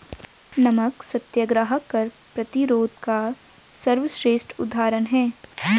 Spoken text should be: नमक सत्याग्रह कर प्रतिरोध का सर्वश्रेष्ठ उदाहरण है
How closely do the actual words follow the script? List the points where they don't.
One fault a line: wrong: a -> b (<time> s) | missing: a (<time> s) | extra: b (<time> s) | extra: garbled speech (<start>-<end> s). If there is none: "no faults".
no faults